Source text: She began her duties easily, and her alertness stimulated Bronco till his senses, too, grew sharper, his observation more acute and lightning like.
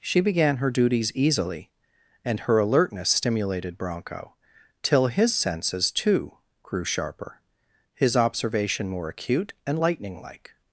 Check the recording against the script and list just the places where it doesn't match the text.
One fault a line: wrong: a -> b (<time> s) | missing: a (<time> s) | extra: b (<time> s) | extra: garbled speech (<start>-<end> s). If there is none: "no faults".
no faults